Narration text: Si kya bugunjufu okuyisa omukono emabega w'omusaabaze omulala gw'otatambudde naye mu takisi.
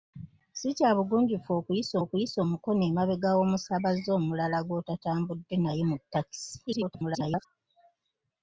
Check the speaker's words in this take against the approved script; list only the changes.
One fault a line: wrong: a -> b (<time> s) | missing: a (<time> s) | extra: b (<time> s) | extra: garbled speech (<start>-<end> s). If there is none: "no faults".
extra: okuyisa (2.0 s)
extra: garbled speech (6.7-7.5 s)